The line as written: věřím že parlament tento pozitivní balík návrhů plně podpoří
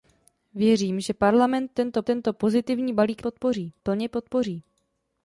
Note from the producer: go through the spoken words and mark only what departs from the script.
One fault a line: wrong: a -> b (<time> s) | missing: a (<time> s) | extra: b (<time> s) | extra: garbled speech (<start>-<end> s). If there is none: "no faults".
extra: tento (2.0 s)
wrong: návrhů -> podpoří (3.2 s)